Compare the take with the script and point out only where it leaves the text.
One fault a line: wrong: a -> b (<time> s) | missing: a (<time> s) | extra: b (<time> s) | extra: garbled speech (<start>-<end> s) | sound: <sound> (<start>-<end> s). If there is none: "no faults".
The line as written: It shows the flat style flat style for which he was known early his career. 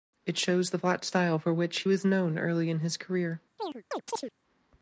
missing: flat style (1.4 s)
extra: in (2.7 s)
sound: chirp (3.6-4.3 s)